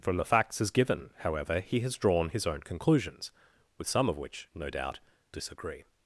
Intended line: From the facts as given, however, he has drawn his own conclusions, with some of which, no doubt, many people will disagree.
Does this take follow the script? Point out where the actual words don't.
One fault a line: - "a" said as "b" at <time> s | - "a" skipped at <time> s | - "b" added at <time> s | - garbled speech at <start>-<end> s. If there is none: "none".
- "many people will" skipped at 5.0 s